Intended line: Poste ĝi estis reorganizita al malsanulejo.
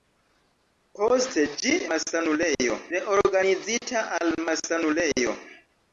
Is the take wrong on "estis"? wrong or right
wrong